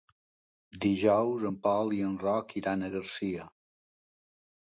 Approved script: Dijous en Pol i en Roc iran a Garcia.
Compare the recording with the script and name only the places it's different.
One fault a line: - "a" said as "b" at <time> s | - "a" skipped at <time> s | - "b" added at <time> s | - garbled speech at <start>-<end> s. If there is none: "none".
none